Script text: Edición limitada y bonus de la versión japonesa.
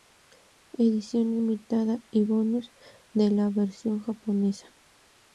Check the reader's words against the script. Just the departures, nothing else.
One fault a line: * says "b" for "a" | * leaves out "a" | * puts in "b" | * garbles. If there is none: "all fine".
all fine